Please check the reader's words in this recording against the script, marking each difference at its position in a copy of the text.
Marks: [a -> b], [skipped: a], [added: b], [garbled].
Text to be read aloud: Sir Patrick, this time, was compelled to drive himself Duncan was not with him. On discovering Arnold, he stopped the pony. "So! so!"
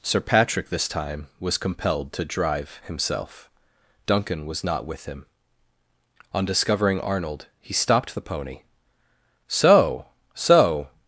Sir Patrick, this time, was compelled to drive himself Duncan was not with him. On discovering Arnold, he stopped the pony. "So! so!"